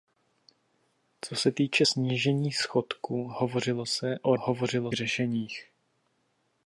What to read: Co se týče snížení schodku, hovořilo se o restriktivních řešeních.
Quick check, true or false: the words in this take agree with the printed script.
false